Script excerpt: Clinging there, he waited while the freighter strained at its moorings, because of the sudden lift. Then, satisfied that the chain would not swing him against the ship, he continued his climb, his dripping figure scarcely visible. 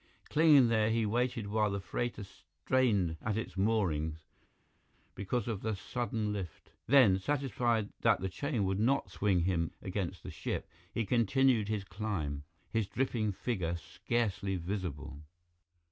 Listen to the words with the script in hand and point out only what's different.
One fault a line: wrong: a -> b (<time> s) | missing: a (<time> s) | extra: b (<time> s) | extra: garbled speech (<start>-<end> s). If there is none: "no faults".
no faults